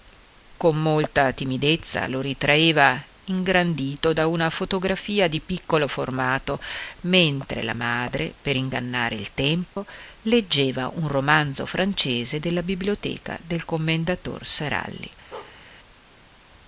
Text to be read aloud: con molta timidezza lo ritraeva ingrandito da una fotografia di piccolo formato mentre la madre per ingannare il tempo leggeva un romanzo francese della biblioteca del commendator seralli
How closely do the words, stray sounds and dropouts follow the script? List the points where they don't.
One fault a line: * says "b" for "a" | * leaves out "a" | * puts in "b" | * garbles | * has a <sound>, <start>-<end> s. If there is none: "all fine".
* has a dropout, 9.7-9.8 s
* has a bark, 15.3-15.6 s